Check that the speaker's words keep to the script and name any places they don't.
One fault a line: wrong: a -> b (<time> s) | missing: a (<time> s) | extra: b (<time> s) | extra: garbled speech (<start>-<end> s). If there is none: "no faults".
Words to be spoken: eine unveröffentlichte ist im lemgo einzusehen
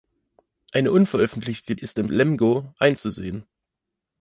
no faults